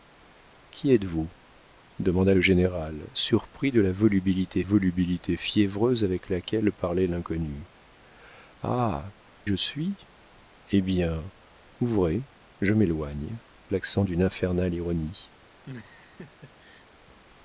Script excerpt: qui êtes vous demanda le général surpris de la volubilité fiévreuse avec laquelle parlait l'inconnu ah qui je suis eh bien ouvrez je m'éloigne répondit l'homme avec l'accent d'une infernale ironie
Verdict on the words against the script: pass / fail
fail